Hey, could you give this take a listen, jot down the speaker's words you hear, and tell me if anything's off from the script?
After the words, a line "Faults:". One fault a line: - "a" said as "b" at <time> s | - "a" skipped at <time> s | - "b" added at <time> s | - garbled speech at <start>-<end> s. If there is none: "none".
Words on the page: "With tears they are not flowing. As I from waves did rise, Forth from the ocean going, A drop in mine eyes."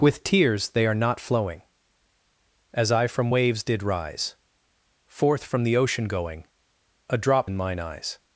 "With tears they are not flowing. As I from waves did rise, Forth from the ocean going, A drop in mine eyes."
Faults:
none